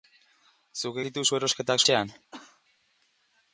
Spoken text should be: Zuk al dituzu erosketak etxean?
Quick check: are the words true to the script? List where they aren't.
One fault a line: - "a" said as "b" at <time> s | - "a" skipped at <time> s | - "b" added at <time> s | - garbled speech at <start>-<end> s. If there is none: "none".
none